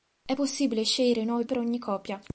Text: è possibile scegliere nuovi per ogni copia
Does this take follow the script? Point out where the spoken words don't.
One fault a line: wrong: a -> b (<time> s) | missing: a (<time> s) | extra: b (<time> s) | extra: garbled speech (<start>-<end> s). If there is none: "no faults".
no faults